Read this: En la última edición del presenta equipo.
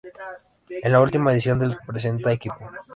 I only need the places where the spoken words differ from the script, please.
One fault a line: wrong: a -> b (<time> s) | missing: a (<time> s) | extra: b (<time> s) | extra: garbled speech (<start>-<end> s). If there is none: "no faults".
no faults